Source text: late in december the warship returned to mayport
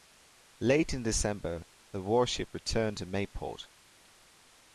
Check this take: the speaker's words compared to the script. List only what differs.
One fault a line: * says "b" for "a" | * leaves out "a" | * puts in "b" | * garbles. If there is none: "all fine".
all fine